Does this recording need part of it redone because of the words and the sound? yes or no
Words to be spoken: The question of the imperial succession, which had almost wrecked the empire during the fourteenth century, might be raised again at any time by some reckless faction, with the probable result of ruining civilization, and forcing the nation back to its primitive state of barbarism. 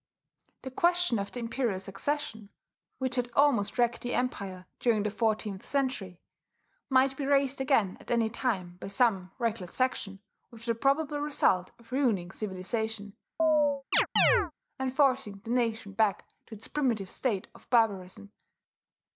yes